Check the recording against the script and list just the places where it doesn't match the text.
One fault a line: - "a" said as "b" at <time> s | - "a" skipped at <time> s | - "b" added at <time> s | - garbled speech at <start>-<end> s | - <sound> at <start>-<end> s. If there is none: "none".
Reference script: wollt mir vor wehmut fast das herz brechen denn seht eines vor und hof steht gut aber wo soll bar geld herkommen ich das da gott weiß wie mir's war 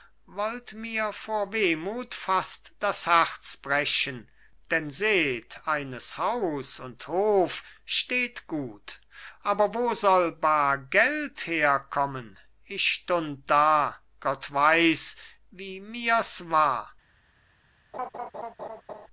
- "vor" said as "haus" at 6.2 s
- "das" said as "stund" at 12.9 s
- laugh at 17.9-19.1 s